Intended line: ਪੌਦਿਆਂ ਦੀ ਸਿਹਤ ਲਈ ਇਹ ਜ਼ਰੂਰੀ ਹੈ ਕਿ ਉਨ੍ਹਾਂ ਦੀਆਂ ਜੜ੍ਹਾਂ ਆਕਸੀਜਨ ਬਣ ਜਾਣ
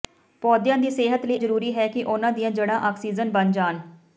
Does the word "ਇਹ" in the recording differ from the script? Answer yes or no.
yes